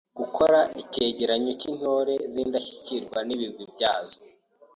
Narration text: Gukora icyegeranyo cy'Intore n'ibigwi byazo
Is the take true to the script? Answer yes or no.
no